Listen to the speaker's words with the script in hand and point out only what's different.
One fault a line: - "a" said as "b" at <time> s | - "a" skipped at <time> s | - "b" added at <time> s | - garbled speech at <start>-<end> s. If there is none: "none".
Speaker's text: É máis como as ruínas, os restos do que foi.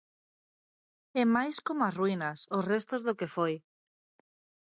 none